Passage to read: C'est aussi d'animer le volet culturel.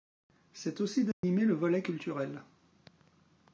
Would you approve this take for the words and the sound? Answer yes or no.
no